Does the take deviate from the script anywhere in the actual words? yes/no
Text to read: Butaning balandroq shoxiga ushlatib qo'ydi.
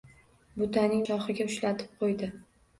yes